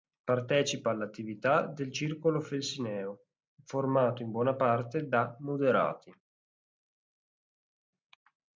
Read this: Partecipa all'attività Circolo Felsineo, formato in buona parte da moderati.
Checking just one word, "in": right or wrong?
right